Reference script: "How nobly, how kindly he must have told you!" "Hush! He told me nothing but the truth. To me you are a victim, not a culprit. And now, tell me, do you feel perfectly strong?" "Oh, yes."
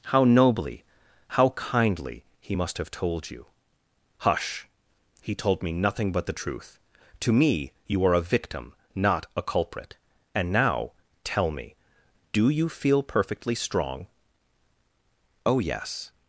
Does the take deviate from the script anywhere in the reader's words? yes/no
no